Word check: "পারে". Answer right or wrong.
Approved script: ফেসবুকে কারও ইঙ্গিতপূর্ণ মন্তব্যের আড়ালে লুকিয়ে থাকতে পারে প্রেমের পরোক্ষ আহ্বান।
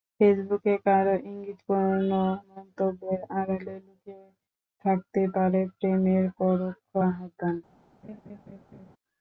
right